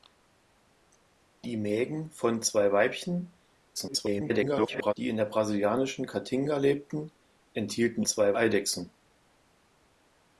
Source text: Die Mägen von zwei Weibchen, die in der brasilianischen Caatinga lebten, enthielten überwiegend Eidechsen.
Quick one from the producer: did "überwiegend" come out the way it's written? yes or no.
no